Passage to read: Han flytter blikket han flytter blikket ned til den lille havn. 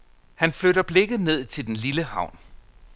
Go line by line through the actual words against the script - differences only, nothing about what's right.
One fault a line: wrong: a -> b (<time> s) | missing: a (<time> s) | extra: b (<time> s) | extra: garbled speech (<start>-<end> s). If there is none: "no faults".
missing: han flytter blikket (1.2 s)